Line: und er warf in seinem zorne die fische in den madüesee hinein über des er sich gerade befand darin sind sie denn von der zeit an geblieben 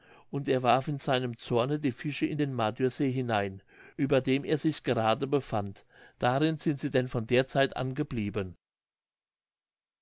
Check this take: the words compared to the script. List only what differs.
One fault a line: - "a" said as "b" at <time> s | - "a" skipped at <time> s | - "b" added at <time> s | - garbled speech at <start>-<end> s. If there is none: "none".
- "des" said as "dem" at 4.2 s